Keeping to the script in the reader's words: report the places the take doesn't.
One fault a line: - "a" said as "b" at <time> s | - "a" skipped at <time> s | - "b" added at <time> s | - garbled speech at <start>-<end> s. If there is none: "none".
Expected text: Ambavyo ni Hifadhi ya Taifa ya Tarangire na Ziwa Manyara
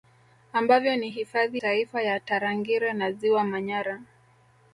- "ya" skipped at 1.6 s